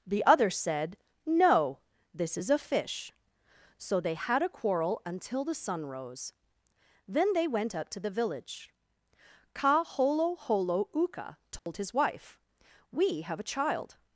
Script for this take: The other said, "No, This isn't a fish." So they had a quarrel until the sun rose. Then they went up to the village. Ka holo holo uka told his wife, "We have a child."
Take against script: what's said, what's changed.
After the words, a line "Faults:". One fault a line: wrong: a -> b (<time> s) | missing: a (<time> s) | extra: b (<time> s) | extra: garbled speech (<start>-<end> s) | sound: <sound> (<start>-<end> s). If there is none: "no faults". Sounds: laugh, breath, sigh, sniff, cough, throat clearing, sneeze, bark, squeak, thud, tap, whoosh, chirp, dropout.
The other said, "No, This is a fish." So they had a quarrel until the sun rose. Then they went up to the village. Ka holo holo uka told his wife, "We have a child."
Faults:
wrong: isn't -> is (2.4 s)
sound: dropout (11.6-11.7 s)